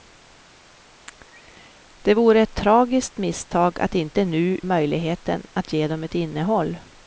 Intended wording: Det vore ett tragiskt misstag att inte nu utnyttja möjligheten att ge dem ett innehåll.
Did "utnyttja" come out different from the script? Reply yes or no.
yes